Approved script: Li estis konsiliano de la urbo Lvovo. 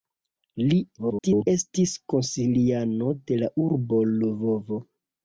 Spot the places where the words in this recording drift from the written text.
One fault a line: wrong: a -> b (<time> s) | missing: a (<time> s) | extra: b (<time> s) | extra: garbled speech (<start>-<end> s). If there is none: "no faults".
extra: garbled speech (1.0-1.5 s)